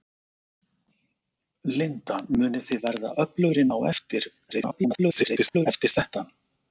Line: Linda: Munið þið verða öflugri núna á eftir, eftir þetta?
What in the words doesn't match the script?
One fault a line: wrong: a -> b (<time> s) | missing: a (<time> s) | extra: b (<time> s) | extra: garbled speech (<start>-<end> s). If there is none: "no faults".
missing: núna (3.7 s)
extra: garbled speech (4.5-5.7 s)